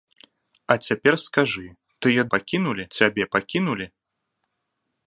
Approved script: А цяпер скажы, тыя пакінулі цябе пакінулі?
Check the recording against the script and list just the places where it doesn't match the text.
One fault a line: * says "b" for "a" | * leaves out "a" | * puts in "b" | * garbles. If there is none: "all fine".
all fine